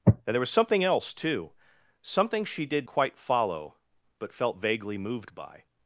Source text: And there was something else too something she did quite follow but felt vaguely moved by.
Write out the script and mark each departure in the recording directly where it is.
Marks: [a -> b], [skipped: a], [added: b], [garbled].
And there was something else too something she did quite follow but felt vaguely moved by.